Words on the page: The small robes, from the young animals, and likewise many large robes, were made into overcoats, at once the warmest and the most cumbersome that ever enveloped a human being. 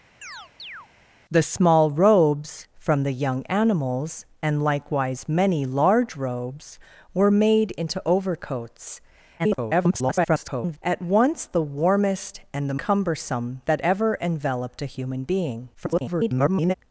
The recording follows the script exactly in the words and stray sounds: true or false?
false